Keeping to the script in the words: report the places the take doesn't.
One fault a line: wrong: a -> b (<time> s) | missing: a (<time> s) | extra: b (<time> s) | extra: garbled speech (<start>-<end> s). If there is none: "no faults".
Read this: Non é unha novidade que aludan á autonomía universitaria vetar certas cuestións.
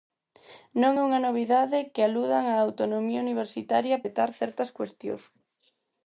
no faults